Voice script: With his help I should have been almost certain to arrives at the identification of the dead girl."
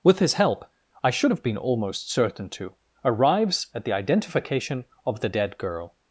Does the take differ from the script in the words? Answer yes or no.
no